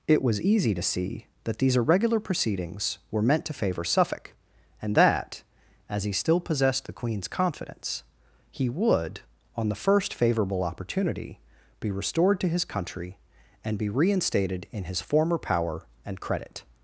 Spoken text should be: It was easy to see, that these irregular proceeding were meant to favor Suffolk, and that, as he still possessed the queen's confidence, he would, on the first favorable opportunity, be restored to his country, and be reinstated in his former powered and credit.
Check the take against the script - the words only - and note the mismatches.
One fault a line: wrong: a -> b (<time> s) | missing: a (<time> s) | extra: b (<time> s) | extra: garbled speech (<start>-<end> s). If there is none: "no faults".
wrong: proceeding -> proceedings (2.2 s)
wrong: powered -> power (15.4 s)